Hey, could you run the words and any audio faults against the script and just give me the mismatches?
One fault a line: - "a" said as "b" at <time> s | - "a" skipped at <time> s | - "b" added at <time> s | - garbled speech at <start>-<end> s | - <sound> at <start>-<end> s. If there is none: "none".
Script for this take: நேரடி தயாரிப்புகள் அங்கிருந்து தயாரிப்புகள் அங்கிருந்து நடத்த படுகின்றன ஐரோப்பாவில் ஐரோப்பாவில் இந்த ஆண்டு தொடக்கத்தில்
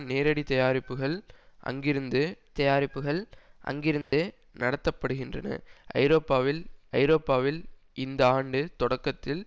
- dropout at 4.0-4.1 s